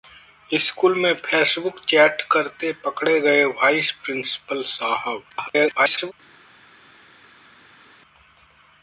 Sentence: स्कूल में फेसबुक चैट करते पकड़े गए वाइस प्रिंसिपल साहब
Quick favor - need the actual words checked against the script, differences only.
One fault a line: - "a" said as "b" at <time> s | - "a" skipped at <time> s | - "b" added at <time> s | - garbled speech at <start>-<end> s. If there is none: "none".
- garbled speech at 5.3-6.1 s